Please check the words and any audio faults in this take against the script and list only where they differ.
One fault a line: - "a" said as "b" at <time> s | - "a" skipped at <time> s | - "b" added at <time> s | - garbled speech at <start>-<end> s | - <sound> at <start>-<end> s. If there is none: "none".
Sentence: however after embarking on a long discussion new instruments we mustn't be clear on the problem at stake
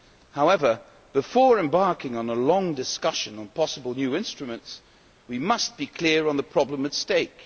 - "after" said as "before" at 1.1 s
- "on possible" added at 3.4 s
- "mustn't" said as "must" at 5.4 s